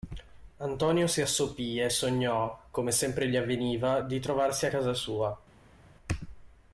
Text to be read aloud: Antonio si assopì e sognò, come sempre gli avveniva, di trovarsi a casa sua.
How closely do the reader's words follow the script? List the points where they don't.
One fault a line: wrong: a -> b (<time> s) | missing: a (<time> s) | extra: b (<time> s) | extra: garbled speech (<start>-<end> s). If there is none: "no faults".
no faults